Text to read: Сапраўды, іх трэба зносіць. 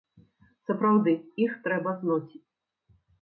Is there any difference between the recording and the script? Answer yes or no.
no